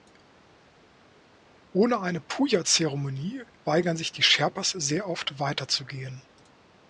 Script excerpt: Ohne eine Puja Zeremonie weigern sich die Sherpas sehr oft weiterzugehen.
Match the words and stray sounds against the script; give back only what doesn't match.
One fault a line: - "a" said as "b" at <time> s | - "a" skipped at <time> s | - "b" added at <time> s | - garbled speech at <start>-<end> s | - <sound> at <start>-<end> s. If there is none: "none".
none